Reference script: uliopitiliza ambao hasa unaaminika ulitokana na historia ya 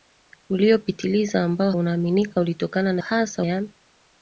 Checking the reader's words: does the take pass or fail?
fail